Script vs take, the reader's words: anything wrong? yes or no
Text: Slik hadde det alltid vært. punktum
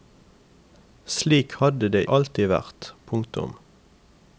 no